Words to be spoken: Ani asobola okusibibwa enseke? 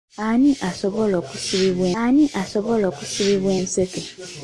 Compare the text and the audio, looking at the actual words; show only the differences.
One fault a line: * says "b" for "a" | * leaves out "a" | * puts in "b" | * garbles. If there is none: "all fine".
* puts in "ani asobola okusibibwa"